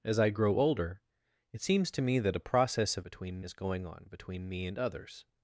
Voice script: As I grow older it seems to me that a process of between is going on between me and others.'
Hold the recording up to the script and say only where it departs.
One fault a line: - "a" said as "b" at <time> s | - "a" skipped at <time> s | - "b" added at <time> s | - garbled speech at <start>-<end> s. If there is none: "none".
none